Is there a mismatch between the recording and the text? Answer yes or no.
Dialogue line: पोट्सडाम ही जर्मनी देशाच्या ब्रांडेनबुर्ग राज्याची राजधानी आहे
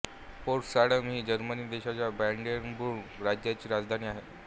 no